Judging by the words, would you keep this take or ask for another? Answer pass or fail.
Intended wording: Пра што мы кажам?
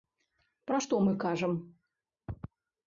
pass